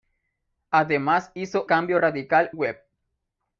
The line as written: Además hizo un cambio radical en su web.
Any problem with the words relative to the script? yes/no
yes